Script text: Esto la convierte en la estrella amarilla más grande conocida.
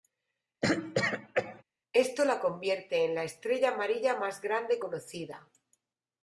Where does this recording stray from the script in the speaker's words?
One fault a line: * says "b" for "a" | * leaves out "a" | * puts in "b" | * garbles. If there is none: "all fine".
all fine